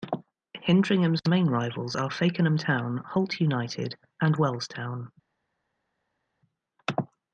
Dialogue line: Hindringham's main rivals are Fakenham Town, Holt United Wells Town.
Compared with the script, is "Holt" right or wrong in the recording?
right